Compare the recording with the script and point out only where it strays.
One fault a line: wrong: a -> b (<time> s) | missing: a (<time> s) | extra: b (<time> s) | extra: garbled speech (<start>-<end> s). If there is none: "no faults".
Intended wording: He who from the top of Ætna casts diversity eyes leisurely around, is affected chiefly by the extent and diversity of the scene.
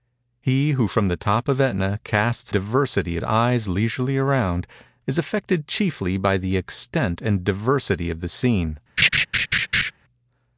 no faults